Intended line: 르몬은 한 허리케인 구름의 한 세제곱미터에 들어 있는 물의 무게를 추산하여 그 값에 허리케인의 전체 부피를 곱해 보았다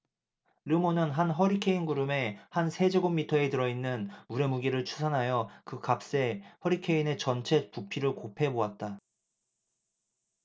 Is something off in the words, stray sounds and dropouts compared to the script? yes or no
no